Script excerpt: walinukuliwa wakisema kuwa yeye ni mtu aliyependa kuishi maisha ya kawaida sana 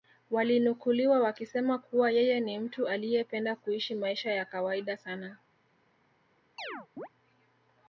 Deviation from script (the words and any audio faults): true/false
true